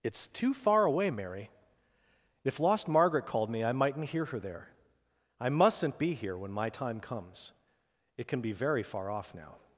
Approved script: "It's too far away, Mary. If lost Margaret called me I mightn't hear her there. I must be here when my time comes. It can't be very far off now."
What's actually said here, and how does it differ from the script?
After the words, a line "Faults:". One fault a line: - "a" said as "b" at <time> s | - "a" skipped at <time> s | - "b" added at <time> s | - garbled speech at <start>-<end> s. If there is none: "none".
"It's too far away, Mary. If lost Margaret called me I mightn't hear her there. I mustn't be here when my time comes. It can be very far off now."
Faults:
- "must" said as "mustn't" at 5.5 s
- "can't" said as "can" at 8.3 s